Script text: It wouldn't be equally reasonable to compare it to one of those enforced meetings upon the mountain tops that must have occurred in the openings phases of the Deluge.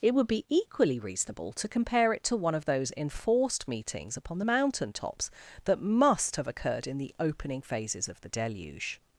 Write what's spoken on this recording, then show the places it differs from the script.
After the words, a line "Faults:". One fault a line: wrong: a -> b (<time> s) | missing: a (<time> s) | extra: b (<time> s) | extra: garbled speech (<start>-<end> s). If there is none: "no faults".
It would be equally reasonable to compare it to one of those enforced meetings upon the mountain tops that must have occurred in the opening phases of the Deluge.
Faults:
wrong: wouldn't -> would (0.1 s)
wrong: openings -> opening (7.2 s)